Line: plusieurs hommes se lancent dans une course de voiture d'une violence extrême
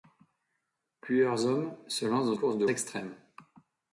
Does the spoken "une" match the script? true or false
false